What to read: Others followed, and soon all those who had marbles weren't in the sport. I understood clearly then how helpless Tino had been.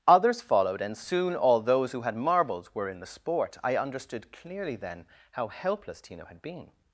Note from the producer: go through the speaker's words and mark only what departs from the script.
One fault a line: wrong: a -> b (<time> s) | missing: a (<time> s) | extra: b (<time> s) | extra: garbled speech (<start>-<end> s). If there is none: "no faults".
wrong: weren't -> were (2.7 s)